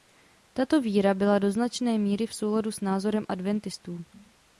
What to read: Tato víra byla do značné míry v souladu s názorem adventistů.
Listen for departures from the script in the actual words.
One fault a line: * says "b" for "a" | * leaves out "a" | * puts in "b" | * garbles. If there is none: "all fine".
all fine